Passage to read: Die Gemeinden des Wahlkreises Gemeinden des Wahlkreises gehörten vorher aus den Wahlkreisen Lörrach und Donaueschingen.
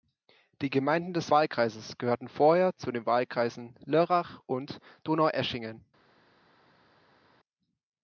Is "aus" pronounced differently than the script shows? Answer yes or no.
yes